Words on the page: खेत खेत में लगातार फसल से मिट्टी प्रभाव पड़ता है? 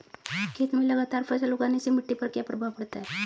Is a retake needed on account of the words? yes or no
yes